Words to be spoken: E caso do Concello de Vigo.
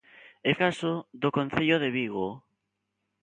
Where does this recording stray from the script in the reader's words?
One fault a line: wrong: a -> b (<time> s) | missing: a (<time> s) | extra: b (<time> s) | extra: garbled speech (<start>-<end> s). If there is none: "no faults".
no faults